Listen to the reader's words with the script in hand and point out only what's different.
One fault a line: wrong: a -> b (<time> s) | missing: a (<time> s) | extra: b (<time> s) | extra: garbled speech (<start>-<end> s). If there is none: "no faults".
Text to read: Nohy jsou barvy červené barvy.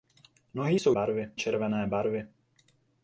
no faults